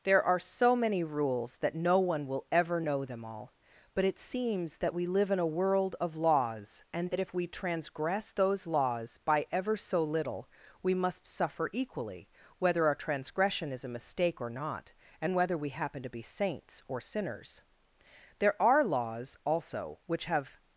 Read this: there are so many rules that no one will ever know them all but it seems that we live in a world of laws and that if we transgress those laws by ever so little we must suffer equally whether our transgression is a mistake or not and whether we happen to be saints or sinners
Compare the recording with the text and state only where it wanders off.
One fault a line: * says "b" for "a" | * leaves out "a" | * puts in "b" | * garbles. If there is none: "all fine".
* puts in "there are laws also which have"